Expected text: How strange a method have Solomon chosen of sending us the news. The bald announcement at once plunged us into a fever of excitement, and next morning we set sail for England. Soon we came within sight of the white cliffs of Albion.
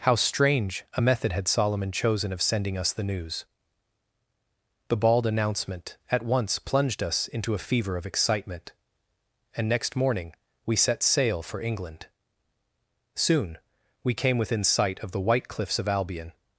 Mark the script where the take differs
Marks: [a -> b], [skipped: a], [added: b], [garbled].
How strange a method [have -> had] Solomon chosen of sending us the news. The bald announcement at once plunged us into a fever of excitement, and next morning we set sail for England. Soon we came within sight of the white cliffs of Albion.